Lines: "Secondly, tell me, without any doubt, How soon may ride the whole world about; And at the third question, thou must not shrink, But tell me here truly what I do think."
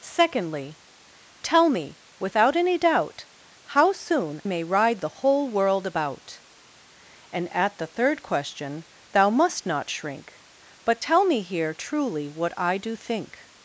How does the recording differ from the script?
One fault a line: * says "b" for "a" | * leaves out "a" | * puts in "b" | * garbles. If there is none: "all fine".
all fine